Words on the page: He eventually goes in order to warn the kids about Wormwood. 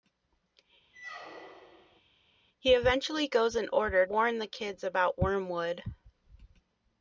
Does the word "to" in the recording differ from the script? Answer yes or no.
yes